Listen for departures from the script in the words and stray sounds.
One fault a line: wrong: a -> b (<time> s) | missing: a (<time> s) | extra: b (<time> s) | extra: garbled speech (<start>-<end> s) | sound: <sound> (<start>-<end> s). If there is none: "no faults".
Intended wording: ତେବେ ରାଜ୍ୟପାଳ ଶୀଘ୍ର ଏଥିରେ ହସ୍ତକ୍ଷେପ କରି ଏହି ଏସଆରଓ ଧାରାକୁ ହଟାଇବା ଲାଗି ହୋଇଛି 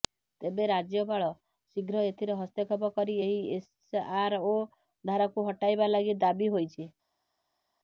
extra: ଦାବି (6.2 s)